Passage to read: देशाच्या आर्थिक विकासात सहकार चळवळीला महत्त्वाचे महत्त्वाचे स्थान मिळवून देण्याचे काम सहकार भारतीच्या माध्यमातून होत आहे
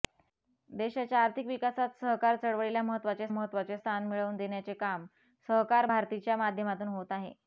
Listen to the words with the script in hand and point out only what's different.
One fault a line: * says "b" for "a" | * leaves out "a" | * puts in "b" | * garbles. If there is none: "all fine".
all fine